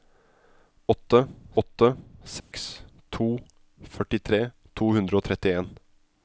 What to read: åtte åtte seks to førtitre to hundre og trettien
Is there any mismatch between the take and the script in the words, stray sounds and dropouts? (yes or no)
yes